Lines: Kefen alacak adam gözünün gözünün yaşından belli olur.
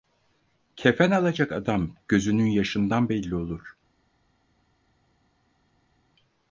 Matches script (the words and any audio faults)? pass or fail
fail